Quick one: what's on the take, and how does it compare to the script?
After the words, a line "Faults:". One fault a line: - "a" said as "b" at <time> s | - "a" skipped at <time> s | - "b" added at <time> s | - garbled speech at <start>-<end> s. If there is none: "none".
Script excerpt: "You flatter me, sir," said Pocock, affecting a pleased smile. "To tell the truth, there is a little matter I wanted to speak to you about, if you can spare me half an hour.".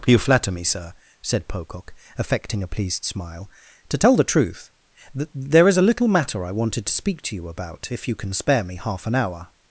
"You flatter me, sir," said Pocock, affecting a pleased smile. "To tell the truth, th there is a little matter I wanted to speak to you about, if you can spare me half an hour.".
Faults:
- "th" added at 5.2 s